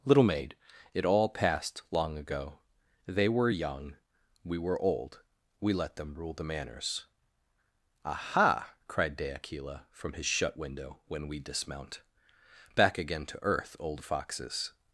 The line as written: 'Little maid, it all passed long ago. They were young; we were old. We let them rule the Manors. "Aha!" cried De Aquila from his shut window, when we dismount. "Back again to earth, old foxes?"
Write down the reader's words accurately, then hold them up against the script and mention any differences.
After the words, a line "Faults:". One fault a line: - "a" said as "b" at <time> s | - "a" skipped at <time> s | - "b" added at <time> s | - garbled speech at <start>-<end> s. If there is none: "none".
'Little maid, it all passed long ago. They were young; we were old. We let them rule the Manors. "Aha!" cried De Aquila from his shut window, when we dismount. "Back again to earth, old foxes?"
Faults:
none